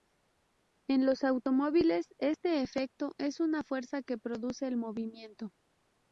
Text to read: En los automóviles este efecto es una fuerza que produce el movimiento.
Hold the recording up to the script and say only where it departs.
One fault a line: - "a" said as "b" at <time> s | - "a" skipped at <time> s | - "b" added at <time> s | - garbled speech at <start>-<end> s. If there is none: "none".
none